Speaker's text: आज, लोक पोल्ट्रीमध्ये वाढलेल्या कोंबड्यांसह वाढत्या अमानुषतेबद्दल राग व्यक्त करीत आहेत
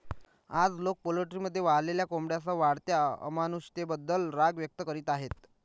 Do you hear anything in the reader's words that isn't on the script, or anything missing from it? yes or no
no